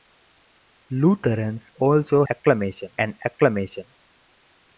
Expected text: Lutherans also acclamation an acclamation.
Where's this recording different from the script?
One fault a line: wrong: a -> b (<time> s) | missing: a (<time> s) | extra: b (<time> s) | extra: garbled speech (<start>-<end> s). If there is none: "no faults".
no faults